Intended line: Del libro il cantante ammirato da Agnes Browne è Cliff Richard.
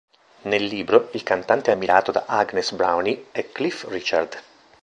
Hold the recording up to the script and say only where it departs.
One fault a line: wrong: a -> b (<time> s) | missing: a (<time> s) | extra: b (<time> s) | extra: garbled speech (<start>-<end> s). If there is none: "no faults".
wrong: Del -> Nel (0.5 s)